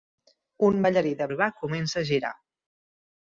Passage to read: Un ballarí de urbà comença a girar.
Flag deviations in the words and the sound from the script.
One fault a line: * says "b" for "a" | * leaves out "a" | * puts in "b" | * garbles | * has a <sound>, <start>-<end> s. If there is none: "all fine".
all fine